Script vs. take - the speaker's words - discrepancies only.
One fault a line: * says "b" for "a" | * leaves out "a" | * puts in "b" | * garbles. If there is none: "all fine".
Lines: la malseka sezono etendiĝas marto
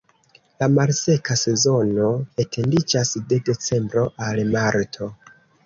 * puts in "de decembro al"